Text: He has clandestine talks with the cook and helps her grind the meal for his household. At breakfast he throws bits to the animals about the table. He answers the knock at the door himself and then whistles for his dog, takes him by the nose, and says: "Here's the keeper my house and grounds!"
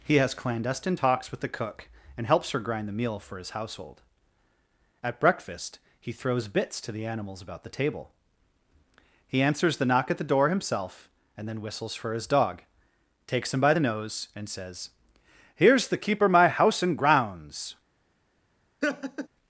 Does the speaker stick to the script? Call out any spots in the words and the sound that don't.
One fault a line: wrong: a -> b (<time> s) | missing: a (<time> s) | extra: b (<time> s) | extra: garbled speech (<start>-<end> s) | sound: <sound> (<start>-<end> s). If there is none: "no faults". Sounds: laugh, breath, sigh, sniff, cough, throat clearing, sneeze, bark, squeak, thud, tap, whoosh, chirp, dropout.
sound: laugh (18.8-19.3 s)